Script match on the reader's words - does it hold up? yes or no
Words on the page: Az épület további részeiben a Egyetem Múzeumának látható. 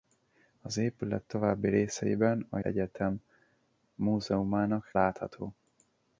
yes